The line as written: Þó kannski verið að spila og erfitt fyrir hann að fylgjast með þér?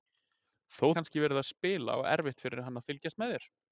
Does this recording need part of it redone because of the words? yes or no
no